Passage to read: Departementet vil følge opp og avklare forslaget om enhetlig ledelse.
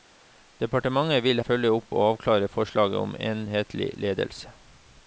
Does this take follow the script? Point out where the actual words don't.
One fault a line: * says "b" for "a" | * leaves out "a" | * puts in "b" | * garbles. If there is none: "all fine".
all fine